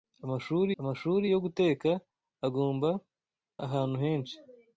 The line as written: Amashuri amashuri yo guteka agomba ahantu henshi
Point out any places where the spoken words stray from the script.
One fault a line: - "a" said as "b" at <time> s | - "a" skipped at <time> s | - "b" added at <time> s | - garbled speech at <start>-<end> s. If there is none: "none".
none